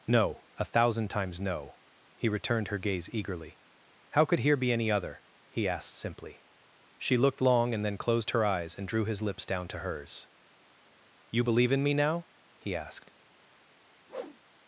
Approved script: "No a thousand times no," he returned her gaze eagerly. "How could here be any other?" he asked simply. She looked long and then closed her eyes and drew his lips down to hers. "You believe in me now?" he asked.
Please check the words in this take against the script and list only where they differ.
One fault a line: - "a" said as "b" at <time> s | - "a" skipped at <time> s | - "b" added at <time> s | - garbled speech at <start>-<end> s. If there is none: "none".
none